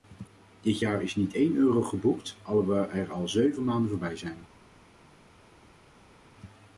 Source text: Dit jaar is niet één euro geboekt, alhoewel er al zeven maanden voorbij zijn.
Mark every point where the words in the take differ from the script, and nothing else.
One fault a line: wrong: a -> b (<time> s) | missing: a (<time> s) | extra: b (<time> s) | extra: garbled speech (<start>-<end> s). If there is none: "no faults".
no faults